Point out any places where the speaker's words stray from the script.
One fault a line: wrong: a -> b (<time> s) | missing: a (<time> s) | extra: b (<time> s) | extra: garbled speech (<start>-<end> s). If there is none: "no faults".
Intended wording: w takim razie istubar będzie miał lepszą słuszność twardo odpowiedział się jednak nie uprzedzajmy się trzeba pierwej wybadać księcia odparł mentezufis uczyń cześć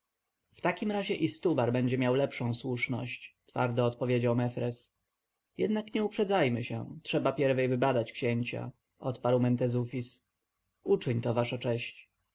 wrong: się -> mefres (4.3 s)
extra: to wasza (11.2 s)